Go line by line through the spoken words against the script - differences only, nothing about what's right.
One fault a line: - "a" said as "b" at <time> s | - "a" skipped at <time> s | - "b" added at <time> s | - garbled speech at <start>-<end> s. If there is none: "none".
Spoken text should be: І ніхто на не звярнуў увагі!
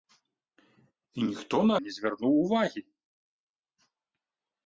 none